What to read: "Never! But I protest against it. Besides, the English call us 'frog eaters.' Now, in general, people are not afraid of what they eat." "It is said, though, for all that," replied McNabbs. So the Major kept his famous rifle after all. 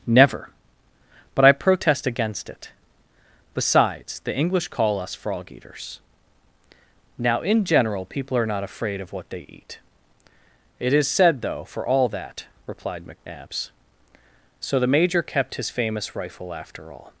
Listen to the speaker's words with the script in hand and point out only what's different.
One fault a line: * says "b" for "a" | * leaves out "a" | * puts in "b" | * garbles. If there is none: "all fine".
all fine